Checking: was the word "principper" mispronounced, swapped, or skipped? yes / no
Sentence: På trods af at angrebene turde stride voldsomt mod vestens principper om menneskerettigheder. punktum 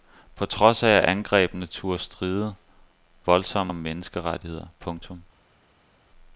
yes